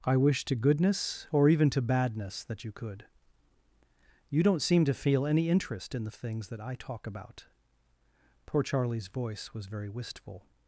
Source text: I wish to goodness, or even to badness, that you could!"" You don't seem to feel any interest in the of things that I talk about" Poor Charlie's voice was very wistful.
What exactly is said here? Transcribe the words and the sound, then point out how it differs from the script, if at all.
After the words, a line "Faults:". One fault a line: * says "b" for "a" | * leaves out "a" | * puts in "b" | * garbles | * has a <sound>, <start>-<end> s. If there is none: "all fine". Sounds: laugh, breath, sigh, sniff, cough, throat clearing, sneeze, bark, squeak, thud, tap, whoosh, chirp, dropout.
I wish to goodness, or even to badness, that you could!"" You don't seem to feel any interest in the of things that I talk about" Poor Charlie's voice was very wistful.
Faults:
all fine